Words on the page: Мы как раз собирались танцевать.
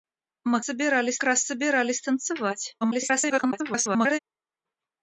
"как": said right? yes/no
no